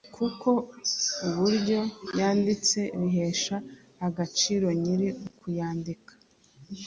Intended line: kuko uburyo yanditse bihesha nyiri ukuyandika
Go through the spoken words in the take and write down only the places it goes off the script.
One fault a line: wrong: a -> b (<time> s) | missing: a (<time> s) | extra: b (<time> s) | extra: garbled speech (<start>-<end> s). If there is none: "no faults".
extra: agaciro (4.1 s)